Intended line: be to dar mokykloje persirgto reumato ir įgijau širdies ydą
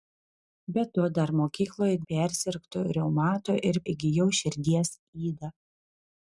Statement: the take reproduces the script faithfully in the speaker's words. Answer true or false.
true